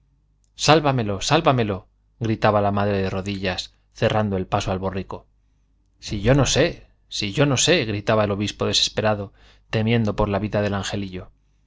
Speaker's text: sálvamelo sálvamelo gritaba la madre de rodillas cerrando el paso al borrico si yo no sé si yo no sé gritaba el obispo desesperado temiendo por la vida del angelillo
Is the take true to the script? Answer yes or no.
yes